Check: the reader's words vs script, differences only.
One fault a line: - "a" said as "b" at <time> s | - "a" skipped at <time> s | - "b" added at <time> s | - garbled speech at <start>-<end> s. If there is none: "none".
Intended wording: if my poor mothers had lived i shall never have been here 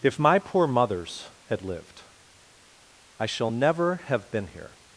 none